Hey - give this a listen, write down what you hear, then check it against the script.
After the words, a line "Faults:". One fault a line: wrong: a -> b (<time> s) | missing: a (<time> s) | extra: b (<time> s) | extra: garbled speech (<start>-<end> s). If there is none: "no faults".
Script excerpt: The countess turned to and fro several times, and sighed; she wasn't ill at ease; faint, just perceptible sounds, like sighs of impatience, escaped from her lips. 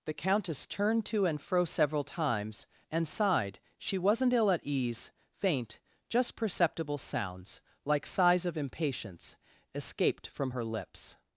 The countess turned to and fro several times, and sighed; she wasn't ill at ease; faint, just perceptible sounds, like sighs of impatience, escaped from her lips.
Faults:
no faults